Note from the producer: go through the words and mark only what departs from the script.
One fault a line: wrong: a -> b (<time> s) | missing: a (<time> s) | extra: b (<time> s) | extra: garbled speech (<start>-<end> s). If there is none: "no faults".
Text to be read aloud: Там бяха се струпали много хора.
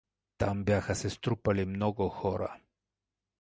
no faults